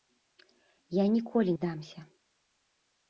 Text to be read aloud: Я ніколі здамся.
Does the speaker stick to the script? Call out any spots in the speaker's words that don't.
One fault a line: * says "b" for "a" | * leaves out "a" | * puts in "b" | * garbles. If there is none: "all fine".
all fine